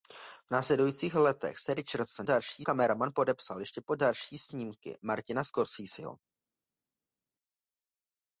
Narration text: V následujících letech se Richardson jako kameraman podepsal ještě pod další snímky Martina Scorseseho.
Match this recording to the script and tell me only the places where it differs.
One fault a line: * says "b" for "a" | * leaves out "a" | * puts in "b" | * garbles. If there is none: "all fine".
* says "další" for "jako"